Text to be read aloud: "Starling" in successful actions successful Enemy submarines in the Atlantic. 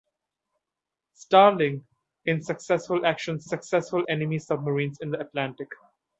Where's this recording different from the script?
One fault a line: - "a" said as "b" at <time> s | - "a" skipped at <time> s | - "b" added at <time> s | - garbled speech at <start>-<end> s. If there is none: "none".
none